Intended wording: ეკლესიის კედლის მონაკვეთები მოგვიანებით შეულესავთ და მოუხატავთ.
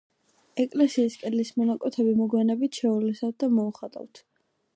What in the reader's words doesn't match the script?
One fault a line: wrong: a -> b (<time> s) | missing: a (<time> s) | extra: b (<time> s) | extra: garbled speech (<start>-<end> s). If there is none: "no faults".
no faults